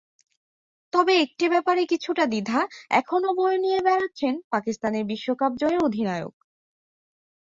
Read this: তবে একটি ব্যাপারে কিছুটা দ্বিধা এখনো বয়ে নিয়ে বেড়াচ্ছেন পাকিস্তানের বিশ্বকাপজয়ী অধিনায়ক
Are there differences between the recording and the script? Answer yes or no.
no